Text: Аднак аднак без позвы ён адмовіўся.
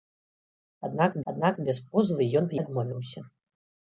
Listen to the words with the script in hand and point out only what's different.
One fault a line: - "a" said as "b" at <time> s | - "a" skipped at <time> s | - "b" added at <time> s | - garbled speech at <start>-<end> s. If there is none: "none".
none